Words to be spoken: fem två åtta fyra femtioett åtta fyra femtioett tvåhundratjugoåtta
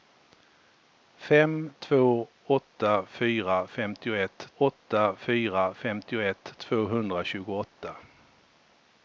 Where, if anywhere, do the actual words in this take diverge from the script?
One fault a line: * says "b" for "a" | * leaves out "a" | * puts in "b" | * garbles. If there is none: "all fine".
all fine